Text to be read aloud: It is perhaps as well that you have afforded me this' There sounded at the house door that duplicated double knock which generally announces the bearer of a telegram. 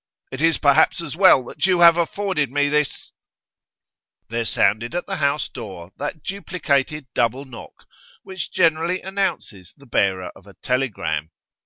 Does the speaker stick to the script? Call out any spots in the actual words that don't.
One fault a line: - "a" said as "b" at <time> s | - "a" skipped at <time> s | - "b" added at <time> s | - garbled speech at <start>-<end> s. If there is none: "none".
none